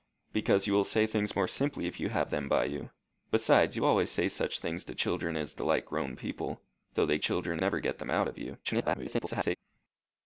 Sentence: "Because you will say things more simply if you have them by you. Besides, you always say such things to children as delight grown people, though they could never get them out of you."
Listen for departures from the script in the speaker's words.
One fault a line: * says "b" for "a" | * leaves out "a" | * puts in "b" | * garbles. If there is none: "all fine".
* says "children" for "could"
* garbles